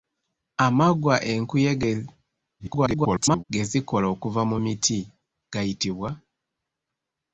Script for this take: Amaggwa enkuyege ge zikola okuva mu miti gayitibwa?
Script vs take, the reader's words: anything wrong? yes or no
yes